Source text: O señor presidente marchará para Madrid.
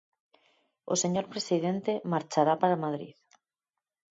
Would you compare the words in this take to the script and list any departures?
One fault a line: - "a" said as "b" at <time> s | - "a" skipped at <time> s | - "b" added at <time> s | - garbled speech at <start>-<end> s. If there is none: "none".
none